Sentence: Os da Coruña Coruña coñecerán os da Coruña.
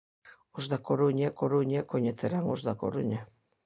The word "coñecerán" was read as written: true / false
true